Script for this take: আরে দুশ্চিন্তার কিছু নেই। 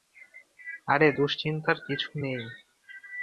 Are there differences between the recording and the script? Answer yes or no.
no